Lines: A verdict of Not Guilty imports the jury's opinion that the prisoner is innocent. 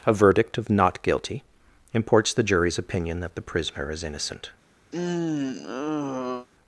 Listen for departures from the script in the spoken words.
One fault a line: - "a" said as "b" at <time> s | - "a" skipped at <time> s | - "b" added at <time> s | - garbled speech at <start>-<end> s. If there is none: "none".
none